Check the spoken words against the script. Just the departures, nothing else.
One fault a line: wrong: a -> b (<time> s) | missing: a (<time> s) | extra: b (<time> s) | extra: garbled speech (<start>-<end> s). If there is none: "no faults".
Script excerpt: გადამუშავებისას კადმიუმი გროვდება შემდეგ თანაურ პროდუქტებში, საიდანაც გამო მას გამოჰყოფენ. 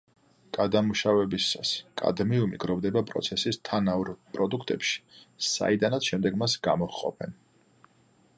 wrong: შემდეგ -> პროცესის (3.1 s)
wrong: გამო -> შემდეგ (6.1 s)